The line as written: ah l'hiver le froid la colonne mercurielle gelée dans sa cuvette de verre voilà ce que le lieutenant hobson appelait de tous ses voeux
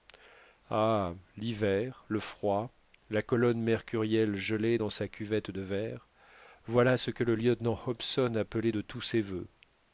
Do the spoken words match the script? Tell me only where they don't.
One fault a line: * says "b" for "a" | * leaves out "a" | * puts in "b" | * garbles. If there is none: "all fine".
all fine